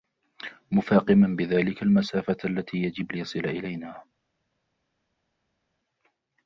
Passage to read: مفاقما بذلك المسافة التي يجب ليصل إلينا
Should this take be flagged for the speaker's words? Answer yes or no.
no